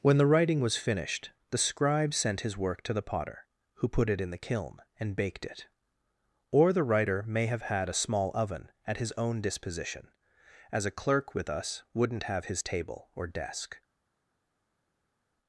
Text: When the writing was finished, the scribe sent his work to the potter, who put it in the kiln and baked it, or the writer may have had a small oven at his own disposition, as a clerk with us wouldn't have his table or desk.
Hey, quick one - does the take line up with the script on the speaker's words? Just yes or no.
yes